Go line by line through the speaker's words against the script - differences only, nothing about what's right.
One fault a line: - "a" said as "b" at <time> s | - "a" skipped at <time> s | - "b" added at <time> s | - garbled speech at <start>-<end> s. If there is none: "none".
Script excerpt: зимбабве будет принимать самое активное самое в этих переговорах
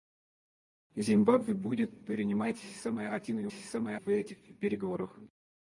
none